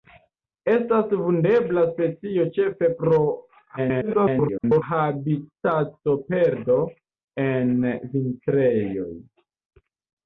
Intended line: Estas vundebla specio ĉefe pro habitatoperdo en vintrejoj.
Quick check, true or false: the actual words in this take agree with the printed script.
false